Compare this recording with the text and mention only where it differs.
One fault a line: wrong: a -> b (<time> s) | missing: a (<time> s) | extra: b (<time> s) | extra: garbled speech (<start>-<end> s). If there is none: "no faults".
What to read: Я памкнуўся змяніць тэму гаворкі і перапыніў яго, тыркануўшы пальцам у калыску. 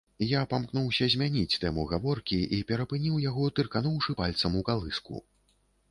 no faults